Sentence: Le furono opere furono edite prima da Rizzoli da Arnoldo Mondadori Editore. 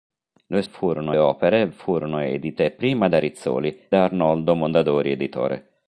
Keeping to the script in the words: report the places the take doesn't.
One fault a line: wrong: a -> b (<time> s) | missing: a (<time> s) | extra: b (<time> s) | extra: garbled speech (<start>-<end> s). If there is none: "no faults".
no faults